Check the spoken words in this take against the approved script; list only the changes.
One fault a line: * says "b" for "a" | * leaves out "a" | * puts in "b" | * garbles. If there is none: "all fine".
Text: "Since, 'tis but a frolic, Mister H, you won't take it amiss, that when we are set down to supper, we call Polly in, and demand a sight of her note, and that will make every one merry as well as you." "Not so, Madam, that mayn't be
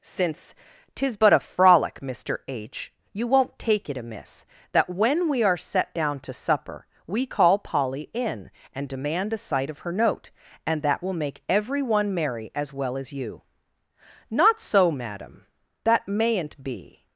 all fine